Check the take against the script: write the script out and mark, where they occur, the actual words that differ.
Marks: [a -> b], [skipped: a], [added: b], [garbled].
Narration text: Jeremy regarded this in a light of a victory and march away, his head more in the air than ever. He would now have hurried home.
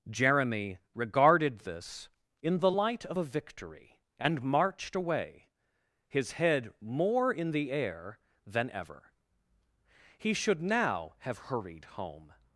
Jeremy regarded this in [a -> the] light of a victory and [march -> marched] away, his head more in the air than ever. He [would -> should] now have hurried home.